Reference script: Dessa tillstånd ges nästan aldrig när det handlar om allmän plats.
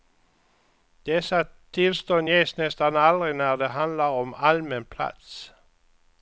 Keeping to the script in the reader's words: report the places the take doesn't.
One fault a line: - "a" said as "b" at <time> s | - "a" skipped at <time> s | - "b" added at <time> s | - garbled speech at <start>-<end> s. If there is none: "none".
none